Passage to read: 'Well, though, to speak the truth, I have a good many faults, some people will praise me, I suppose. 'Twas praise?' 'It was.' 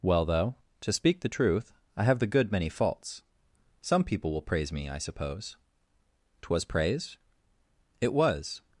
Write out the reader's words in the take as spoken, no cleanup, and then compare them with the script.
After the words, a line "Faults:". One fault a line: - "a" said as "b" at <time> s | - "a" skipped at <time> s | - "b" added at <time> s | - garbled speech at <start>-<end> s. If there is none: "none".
'Well, though, to speak the truth, I have the good many faults, some people will praise me, I suppose. 'Twas praise?' 'It was.'
Faults:
- "a" said as "the" at 2.2 s